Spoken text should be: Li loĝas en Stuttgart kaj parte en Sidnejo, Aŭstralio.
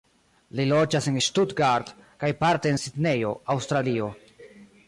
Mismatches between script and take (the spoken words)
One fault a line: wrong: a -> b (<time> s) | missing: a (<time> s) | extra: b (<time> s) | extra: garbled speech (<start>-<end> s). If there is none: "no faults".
no faults